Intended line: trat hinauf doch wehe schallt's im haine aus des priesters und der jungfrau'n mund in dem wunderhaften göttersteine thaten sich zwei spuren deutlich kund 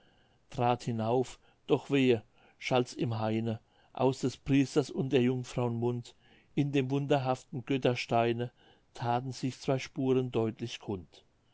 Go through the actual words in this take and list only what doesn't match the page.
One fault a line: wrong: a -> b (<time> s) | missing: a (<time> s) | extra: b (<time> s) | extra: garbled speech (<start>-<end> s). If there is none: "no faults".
no faults